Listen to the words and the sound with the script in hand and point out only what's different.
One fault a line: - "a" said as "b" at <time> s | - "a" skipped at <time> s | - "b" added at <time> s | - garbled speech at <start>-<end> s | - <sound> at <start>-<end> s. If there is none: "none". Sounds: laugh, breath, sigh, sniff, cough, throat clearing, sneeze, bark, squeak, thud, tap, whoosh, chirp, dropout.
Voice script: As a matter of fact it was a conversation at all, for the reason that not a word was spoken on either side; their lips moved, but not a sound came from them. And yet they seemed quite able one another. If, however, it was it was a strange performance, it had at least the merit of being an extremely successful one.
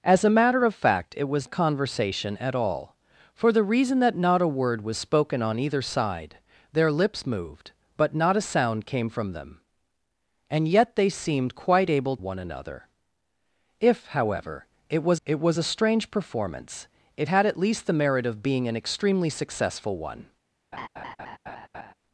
- laugh at 20.7-21.9 s